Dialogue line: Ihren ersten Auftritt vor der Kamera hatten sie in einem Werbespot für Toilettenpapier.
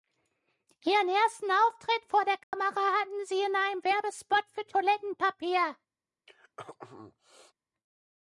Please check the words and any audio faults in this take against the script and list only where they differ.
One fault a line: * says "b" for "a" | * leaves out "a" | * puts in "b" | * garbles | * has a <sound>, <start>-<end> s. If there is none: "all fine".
* has a dropout, 2.4-2.5 s
* has a throat clearing, 6.3-7.5 s